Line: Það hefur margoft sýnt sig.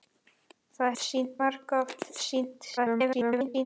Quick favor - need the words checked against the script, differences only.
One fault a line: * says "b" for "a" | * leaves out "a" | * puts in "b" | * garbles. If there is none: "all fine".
* says "sýnt" for "hefur"
* garbles